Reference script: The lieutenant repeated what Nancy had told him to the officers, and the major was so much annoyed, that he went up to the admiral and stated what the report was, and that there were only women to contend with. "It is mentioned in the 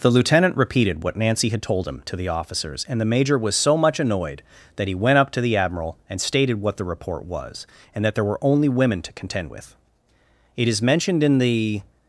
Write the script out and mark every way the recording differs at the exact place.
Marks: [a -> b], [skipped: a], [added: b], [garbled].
The lieutenant repeated what Nancy had told him to the officers, and the major was so much annoyed, that he went up to the admiral and stated what the report was, and that there were only women to contend with. "It is mentioned in the